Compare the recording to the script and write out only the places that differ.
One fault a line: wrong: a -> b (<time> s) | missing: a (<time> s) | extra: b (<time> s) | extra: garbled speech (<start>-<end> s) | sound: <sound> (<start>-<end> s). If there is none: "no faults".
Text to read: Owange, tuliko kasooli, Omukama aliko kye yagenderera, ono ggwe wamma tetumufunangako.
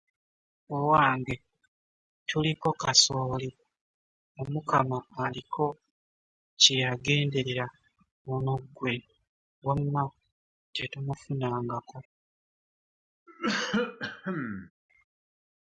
sound: cough (13.3-14.7 s)